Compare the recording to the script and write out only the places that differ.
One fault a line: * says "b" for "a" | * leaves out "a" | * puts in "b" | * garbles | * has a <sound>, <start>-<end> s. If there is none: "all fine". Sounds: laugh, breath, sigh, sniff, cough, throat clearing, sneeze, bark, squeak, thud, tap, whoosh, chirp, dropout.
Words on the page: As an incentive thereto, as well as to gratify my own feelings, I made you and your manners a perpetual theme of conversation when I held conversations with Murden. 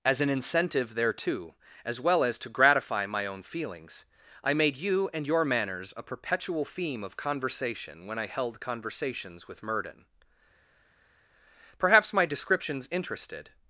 * puts in "Perhaps my descriptions interested"